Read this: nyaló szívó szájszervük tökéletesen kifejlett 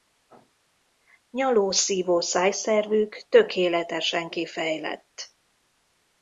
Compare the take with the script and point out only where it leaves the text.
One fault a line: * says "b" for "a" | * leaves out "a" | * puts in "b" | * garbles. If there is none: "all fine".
all fine